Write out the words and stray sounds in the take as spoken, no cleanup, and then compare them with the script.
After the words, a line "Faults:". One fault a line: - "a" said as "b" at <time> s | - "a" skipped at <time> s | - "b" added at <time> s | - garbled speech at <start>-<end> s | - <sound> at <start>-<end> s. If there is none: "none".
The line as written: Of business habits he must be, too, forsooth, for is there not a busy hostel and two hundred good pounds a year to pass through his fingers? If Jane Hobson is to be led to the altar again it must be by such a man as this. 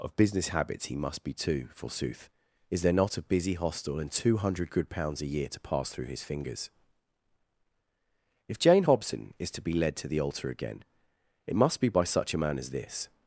Of business habits he must be, too, forsooth, is there not a busy hostel and two hundred good pounds a year to pass through his fingers? If Jane Hobson is to be led to the altar again it must be by such a man as this.
Faults:
- "for" skipped at 2.3 s